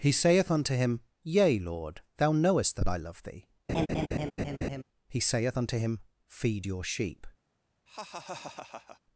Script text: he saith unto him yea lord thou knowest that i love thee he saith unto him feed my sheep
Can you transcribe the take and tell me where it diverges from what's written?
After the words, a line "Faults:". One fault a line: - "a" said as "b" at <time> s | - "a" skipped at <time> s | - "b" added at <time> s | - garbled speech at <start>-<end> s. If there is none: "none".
he saith unto him yea lord thou knowest that i love thee he saith unto him feed your sheep
Faults:
- "my" said as "your" at 6.6 s